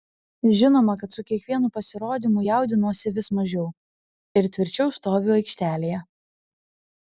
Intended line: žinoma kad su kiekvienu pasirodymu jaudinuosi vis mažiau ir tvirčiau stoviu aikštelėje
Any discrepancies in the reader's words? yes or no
no